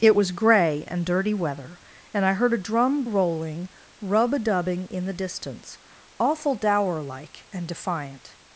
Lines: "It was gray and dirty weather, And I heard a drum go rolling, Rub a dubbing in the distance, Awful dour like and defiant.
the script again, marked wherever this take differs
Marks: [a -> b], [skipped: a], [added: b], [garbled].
"It was gray and dirty weather, And I heard a drum [skipped: go] rolling, Rub a dubbing in the distance, Awful dour like and defiant.